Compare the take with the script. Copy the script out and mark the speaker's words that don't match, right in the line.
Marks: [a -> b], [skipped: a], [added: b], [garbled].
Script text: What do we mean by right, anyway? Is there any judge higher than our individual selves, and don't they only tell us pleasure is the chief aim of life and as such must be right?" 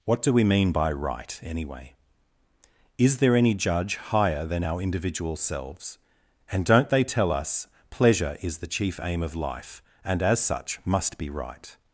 What do we mean by right, anyway? Is there any judge higher than our individual selves, and don't they [skipped: only] tell us pleasure is the chief aim of life and as such must be right?"